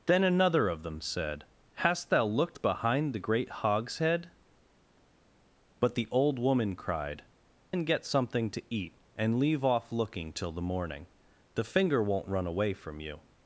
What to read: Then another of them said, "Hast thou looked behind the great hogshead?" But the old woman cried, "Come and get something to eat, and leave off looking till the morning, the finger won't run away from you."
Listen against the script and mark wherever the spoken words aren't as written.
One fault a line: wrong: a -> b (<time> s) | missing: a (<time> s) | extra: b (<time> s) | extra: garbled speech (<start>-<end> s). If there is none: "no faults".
missing: Come (7.2 s)